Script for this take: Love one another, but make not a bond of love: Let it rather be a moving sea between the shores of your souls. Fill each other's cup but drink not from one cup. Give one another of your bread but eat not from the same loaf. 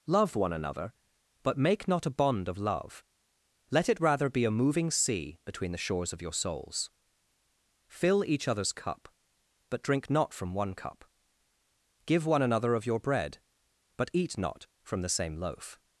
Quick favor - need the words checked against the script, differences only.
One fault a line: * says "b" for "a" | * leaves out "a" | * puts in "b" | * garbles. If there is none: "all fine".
all fine